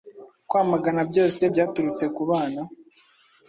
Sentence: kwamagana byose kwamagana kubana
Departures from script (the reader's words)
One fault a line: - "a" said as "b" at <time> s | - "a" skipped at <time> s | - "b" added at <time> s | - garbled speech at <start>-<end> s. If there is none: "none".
- "kwamagana" said as "byaturutse" at 1.5 s